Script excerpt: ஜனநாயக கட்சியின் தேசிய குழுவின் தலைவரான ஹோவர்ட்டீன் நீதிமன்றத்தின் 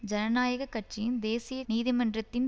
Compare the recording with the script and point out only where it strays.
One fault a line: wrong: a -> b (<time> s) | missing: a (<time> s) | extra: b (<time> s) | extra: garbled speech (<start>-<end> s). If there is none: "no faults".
missing: குழுவின் தலைவரான ஹோவர்ட்டீன் (1.6 s)